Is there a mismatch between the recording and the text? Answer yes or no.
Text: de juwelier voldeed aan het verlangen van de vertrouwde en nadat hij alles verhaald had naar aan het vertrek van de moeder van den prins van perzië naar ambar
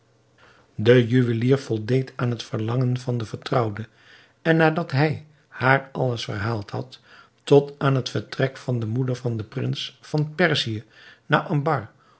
yes